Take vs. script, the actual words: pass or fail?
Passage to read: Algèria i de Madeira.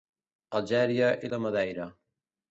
pass